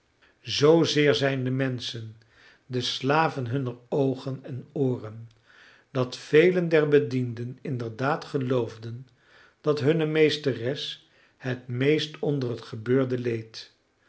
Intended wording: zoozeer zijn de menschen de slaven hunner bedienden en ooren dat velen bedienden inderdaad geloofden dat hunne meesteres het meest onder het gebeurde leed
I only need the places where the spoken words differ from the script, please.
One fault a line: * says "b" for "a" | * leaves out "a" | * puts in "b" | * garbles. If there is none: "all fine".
* says "oogen" for "bedienden"
* puts in "der"